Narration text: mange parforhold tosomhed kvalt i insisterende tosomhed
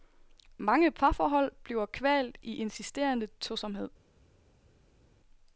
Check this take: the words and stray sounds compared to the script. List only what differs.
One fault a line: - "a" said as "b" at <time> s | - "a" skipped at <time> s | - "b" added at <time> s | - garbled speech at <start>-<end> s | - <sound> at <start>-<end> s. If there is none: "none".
- "tosomhed" said as "bliver" at 1.6 s